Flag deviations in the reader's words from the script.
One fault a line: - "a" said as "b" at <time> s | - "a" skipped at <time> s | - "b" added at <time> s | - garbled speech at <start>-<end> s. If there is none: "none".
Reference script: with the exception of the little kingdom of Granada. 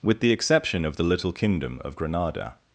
none